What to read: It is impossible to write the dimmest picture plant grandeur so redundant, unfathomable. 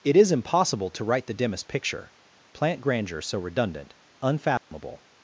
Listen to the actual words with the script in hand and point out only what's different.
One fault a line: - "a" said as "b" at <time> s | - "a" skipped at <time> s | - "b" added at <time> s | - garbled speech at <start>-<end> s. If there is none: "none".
none